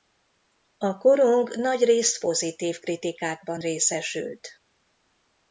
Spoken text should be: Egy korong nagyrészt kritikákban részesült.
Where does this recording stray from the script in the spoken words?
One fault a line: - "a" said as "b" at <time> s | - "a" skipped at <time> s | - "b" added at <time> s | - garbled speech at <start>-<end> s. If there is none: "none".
- "Egy" said as "A" at 0.8 s
- "pozitív" added at 2.2 s